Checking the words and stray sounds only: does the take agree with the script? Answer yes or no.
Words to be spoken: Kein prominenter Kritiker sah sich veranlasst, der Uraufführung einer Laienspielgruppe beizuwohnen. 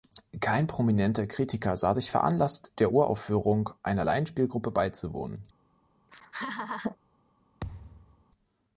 no